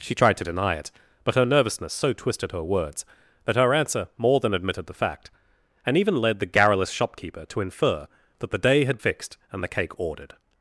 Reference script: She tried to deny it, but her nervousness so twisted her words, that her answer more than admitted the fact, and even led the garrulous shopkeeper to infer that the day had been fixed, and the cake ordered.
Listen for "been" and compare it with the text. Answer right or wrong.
wrong